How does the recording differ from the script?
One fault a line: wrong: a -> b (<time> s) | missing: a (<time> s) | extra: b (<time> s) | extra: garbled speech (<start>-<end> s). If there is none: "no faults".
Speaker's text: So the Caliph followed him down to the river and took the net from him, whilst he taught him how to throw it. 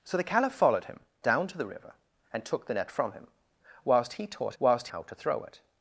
wrong: him -> whilst (4.6 s)